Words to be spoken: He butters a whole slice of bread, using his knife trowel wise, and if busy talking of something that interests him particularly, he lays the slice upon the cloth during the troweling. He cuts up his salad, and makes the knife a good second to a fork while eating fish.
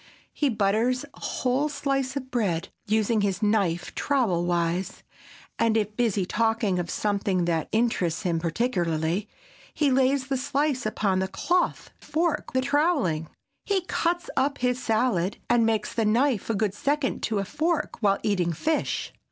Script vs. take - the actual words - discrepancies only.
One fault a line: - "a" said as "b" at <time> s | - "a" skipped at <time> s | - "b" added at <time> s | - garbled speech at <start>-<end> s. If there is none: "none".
- "during" said as "fork" at 12.0 s